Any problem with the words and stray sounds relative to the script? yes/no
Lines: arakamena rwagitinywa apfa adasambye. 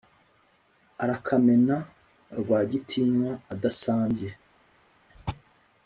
yes